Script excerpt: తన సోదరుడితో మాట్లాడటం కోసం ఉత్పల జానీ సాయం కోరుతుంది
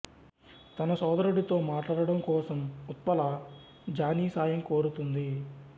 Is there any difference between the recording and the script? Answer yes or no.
no